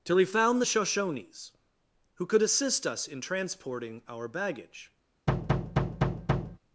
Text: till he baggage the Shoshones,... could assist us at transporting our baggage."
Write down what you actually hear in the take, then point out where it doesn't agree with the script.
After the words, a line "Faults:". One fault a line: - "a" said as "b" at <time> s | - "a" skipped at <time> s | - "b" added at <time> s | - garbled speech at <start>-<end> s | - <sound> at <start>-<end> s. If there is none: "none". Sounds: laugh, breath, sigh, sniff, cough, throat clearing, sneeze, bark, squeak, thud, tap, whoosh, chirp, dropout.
till he found the Shoshones,... who could assist us in transporting our baggage."
Faults:
- "baggage" said as "found" at 0.2 s
- "who" added at 2.1 s
- "at" said as "in" at 3.1 s
- thud at 5.3-6.6 s